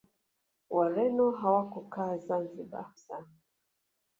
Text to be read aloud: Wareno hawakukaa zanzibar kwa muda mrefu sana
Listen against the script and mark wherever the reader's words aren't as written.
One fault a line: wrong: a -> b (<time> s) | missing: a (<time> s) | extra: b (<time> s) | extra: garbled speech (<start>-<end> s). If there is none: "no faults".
missing: kwa muda mrefu (2.9 s)